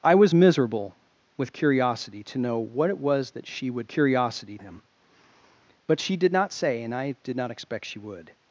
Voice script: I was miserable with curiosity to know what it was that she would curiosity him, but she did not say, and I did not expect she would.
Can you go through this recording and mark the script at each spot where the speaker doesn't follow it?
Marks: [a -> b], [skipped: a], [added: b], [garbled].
I was miserable with curiosity to know what it was that she would curiosity him, but she did not say, and I did not expect she would.